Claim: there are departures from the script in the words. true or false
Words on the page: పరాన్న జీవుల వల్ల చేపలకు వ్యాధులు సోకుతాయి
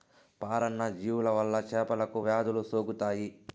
false